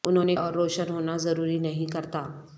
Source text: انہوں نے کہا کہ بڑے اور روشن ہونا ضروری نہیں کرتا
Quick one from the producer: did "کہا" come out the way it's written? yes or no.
no